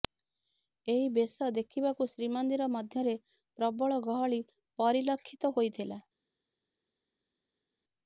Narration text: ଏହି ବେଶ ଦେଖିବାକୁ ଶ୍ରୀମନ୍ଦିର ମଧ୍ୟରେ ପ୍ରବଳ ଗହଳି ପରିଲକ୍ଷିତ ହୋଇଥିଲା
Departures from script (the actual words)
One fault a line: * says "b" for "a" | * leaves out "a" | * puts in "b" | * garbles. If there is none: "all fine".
all fine